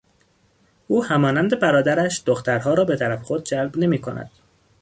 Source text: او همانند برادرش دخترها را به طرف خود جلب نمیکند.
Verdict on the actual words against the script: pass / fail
pass